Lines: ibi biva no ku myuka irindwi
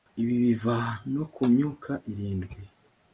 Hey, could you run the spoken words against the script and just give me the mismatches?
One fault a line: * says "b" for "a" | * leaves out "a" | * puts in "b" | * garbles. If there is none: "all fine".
all fine